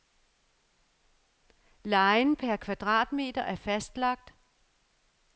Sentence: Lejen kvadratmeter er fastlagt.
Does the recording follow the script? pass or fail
fail